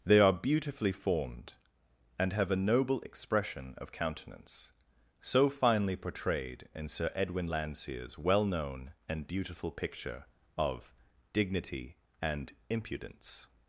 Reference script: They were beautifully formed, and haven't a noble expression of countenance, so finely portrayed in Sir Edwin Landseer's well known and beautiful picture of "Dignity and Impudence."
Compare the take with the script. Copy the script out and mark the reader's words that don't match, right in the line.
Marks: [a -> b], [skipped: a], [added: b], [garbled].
They [were -> are] beautifully formed, and [haven't -> have] a noble expression of countenance, so finely portrayed in Sir Edwin Landseer's well known and beautiful picture of "Dignity and Impudence."